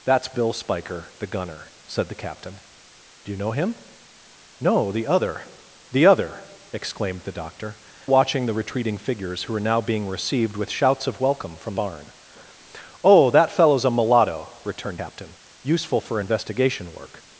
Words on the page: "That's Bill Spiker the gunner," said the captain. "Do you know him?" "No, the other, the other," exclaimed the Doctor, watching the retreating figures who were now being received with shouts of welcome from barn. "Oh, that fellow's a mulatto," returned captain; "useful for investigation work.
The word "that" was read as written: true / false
true